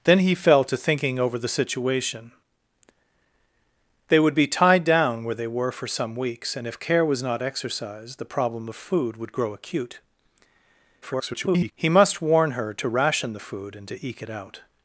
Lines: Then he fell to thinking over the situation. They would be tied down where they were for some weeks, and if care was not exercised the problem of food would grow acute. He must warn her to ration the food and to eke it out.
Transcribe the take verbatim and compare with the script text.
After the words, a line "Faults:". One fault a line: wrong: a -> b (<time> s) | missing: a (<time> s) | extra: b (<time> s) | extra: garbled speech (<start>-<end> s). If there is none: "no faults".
Then he fell to thinking over the situation. They would be tied down where they were for some weeks, and if care was not exercised the problem of food would grow acute. [garbled] He must warn her to ration the food and to eke it out.
Faults:
extra: garbled speech (11.0-11.7 s)